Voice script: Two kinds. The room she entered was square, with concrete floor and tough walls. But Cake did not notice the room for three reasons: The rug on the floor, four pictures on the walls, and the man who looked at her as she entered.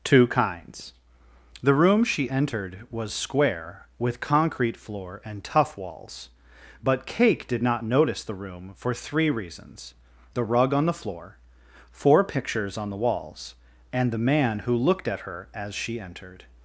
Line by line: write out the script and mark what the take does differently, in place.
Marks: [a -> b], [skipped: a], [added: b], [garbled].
Two kinds. The room she entered was square, with concrete floor and tough walls. But Cake did not notice the room for three reasons: The rug on the floor, four pictures on the walls, and the man who looked at her as she entered.